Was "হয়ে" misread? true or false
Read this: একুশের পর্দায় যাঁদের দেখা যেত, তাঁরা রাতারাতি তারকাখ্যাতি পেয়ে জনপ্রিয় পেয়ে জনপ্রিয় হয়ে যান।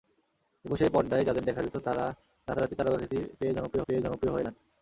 false